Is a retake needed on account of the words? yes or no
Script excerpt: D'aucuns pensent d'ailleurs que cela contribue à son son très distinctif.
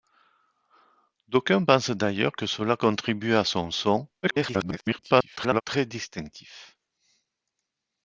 yes